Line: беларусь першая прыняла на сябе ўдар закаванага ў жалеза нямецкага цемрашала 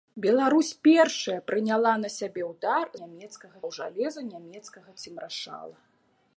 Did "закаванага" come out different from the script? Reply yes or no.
yes